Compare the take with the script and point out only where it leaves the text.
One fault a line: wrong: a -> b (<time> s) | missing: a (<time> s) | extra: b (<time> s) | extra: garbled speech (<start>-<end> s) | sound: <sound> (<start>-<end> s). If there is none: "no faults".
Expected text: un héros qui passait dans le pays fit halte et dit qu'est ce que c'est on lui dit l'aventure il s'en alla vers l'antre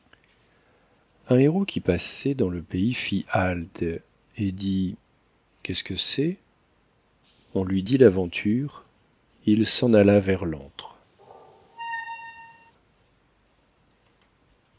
sound: squeak (11.2-12.7 s)